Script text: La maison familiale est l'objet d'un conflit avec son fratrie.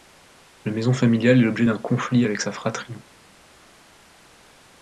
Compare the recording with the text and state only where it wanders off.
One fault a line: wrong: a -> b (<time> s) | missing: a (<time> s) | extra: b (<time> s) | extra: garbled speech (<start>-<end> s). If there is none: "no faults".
wrong: son -> sa (2.4 s)